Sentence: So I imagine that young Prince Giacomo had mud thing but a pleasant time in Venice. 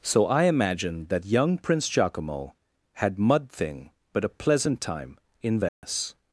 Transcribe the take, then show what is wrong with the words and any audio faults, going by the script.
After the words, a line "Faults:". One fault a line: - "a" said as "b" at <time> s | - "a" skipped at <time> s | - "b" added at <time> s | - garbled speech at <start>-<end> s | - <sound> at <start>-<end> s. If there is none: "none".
So I imagine that young Prince Giacomo had mud thing but a pleasant time in Venice.
Faults:
- dropout at 5.7-5.8 s